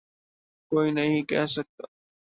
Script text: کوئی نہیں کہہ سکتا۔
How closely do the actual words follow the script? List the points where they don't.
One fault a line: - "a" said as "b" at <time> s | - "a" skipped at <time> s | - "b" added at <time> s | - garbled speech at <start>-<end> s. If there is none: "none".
none